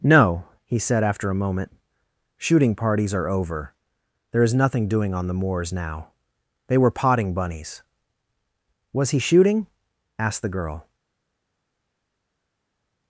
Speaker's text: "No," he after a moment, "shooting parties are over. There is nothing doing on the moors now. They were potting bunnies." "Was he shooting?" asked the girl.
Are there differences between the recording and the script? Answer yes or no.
yes